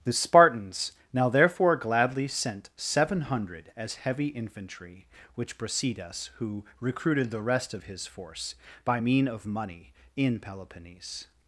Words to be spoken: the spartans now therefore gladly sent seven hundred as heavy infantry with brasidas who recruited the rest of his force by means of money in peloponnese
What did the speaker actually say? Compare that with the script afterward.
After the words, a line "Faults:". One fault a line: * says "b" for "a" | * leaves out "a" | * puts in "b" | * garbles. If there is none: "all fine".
the spartans now therefore gladly sent seven hundred as heavy infantry which brasidas who recruited the rest of his force by mean of money in peloponnese
Faults:
* says "which" for "with"
* says "mean" for "means"